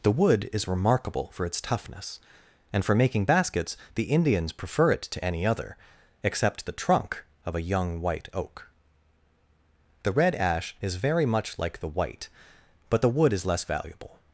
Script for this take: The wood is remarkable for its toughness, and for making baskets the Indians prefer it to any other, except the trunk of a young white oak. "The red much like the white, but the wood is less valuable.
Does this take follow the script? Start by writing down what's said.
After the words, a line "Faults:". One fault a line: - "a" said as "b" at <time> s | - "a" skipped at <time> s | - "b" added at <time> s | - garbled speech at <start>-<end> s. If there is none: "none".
The wood is remarkable for its toughness, and for making baskets the Indians prefer it to any other, except the trunk of a young white oak. "The red ash is very much like the white, but the wood is less valuable.
Faults:
- "ash is very" added at 10.3 s